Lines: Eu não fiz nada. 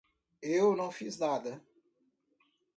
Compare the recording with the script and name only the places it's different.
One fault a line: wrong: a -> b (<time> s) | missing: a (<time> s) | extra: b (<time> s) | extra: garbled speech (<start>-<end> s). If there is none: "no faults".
no faults